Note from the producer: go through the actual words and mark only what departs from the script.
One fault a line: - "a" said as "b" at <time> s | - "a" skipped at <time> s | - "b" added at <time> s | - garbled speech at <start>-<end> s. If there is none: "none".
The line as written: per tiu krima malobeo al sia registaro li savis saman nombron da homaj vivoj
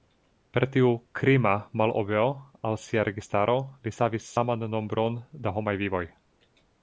none